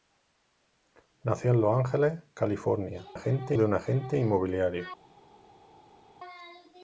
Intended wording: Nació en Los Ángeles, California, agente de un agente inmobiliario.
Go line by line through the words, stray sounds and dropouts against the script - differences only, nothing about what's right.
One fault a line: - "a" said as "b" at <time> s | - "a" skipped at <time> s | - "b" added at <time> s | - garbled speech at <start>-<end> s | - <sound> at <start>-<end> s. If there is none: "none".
none